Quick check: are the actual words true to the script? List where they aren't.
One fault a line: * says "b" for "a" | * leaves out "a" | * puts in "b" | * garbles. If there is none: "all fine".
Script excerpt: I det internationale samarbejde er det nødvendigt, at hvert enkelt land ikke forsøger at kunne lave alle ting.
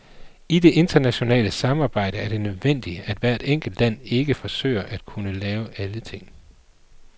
all fine